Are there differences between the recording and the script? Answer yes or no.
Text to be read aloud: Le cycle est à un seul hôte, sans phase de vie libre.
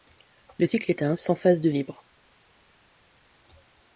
yes